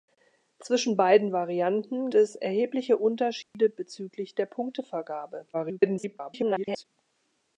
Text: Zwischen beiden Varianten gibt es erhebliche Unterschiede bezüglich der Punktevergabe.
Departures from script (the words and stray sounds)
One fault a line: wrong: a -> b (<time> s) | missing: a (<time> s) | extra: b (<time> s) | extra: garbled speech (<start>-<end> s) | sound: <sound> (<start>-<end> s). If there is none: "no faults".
missing: gibt (2.1 s)
sound: dropout (3.4-3.5 s)
extra: garbled speech (5.5-6.8 s)